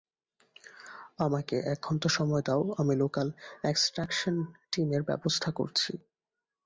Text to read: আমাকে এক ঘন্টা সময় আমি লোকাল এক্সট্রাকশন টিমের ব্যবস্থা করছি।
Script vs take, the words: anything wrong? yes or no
yes